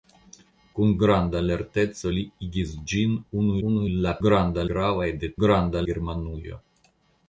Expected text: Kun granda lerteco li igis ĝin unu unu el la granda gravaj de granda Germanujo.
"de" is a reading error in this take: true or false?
false